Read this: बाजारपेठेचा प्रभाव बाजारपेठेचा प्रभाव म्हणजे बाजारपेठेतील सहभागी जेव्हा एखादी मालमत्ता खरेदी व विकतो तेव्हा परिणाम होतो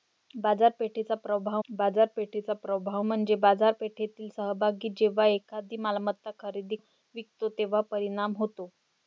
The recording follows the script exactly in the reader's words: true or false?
true